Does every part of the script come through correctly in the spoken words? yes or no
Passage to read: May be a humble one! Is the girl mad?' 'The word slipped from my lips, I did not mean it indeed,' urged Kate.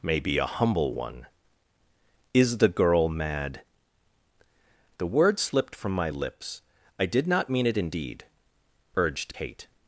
yes